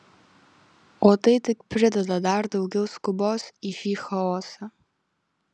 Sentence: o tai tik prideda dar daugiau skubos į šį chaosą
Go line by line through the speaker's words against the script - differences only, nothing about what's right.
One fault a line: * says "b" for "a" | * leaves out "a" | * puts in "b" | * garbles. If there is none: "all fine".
all fine